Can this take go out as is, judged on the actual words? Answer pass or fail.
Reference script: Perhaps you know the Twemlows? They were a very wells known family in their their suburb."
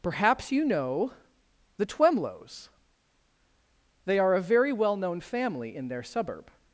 fail